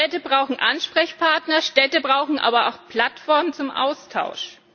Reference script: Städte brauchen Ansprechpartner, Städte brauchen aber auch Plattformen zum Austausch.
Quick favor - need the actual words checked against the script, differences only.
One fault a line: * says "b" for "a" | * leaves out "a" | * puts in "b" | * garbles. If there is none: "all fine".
all fine